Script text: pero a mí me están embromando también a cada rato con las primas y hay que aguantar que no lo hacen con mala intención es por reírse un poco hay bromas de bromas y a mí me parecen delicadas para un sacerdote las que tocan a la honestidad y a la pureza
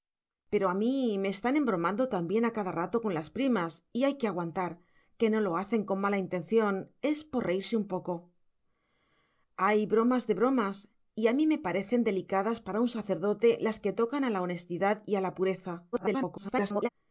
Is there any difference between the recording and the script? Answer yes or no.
yes